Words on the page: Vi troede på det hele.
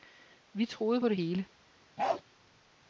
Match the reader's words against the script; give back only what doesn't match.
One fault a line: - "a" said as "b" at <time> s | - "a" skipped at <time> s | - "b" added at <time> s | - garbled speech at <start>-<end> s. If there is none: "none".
none